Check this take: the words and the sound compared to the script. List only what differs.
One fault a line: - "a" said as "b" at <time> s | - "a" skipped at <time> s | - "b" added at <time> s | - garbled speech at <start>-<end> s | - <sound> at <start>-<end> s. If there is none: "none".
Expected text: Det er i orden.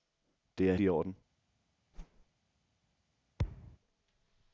- whoosh at 1.9-2.3 s
- thud at 3.4-3.8 s